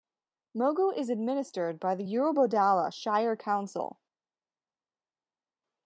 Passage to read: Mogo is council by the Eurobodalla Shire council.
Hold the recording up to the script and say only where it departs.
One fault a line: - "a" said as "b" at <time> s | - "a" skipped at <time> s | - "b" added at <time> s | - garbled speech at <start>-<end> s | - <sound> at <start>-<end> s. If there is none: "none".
- "council" said as "administered" at 1.1 s